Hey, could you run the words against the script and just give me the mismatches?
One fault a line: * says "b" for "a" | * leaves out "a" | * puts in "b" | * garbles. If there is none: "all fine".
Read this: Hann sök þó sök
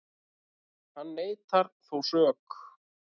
* says "neitar" for "sök"